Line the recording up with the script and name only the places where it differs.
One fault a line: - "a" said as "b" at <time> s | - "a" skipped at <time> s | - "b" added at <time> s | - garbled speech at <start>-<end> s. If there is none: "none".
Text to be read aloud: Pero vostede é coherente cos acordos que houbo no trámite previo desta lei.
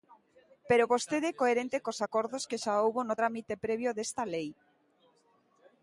- "xa" added at 2.6 s